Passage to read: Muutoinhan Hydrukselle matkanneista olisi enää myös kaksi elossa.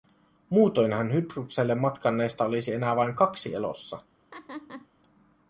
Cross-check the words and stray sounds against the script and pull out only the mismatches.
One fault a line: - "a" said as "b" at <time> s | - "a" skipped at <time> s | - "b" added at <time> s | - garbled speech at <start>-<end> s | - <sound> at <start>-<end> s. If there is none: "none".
- "myös" said as "vain" at 3.0 s
- laugh at 4.3-4.9 s